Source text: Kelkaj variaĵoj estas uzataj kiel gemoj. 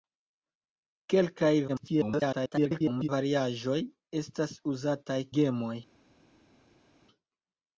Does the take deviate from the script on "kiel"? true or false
true